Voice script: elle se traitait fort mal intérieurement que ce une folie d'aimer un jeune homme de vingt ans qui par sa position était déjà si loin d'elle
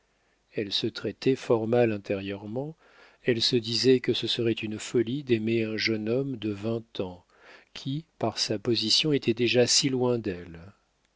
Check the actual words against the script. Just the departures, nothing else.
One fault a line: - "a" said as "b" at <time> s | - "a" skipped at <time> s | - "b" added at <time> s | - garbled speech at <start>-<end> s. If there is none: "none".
- "elle se disait" added at 3.2 s
- "serait" added at 4.2 s